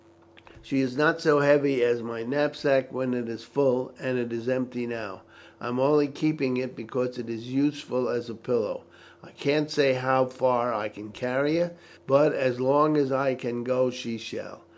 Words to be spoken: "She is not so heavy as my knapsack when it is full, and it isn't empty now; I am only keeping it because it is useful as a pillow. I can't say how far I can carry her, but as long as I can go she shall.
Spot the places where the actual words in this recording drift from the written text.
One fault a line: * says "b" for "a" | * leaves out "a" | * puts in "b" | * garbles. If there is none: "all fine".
* says "is" for "isn't"